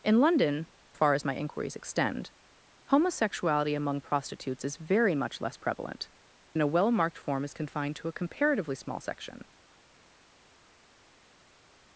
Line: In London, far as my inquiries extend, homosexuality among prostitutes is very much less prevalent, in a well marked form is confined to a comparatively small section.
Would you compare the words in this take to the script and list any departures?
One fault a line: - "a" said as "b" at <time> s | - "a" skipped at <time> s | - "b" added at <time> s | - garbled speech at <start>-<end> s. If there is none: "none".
none